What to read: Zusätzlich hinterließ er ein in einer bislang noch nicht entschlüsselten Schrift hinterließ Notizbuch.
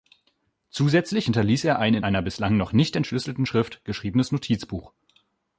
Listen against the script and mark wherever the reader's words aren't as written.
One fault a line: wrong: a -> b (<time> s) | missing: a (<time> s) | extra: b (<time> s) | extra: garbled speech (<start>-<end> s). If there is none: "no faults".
wrong: hinterließ -> geschriebenes (3.8 s)